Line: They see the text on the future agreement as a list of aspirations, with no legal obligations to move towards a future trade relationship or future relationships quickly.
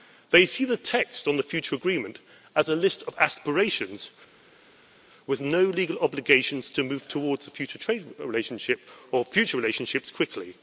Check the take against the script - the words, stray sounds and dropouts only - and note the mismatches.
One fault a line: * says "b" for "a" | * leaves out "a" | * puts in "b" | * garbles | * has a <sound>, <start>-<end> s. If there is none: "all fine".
all fine